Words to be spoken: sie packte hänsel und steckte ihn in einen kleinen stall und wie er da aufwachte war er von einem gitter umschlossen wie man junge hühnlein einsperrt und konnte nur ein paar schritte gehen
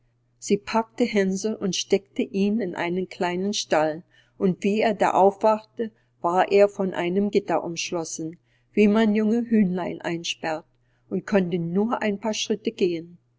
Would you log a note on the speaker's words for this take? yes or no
no